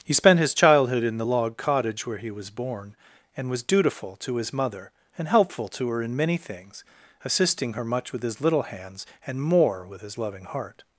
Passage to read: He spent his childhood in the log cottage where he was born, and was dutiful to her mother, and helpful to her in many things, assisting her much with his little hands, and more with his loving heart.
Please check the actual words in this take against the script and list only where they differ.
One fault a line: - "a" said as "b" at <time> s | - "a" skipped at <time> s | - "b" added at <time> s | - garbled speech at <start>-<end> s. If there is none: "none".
- "her" said as "his" at 4.4 s